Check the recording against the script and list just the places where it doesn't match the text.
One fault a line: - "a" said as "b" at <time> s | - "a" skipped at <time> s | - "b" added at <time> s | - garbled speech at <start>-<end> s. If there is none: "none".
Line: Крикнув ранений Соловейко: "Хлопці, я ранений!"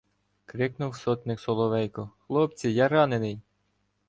- "ранений" said as "сотник" at 0.9 s